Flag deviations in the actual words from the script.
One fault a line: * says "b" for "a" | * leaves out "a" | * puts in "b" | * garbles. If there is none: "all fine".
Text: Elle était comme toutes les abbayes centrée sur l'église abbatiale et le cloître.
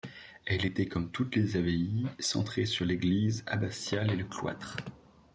all fine